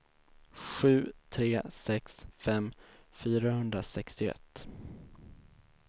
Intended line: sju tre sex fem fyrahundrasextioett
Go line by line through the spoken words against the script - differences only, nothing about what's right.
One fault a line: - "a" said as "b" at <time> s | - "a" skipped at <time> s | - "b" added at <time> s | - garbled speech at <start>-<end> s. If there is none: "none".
none